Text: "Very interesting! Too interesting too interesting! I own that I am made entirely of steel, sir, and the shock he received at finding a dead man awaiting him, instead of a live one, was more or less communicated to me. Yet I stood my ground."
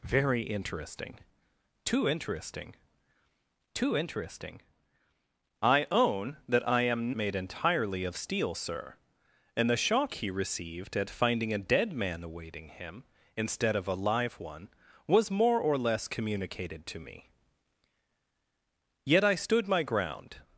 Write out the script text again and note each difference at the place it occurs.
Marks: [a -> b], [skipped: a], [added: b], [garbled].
"Very interesting! Too interesting too interesting! I own that I am made entirely of steel, sir, and the shock he received at finding a dead man awaiting him, instead of a live one, was more or less communicated to me. Yet I stood my ground."